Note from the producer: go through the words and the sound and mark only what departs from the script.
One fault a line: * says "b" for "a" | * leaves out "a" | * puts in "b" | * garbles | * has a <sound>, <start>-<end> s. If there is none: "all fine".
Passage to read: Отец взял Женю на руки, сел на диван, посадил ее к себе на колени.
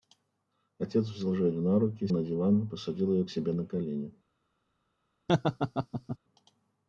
* leaves out "сел"
* has a laugh, 5.3-6.2 s